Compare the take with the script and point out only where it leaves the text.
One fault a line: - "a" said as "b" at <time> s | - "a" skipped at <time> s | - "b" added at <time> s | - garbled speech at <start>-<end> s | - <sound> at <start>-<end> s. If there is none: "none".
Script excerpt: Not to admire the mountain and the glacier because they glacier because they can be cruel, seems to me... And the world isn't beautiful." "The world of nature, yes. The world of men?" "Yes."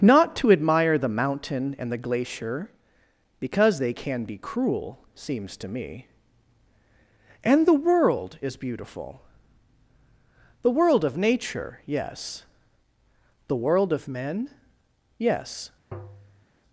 - "glacier because they" skipped at 3.9 s
- "isn't" said as "is" at 8.4 s
- tap at 15.9-16.5 s